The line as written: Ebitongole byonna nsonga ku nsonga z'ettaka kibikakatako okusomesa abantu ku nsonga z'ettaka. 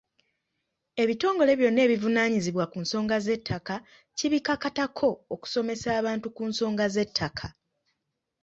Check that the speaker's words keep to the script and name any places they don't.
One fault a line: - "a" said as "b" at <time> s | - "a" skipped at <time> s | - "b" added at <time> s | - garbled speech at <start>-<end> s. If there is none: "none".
- "nsonga" said as "ebivunaanyizibwa" at 1.9 s